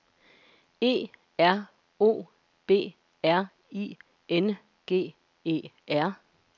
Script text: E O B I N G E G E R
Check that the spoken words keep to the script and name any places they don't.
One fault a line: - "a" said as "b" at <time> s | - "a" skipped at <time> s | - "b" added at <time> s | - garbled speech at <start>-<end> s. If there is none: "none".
- "R" added at 1.4 s
- "R" added at 3.2 s
- "G E" skipped at 5.7 s